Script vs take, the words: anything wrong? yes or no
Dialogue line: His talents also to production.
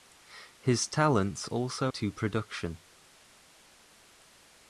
no